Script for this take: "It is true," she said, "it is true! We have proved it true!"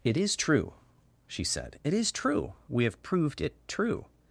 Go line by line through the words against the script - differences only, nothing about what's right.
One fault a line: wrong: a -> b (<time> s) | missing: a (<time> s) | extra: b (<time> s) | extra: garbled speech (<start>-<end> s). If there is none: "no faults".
no faults